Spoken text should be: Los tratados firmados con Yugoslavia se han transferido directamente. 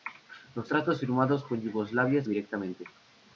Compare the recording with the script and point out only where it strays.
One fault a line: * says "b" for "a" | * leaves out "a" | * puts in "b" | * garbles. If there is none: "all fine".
* leaves out "se han transferido"